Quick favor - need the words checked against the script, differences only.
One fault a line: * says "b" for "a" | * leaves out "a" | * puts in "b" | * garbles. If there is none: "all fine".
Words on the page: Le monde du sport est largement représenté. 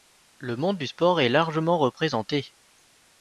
all fine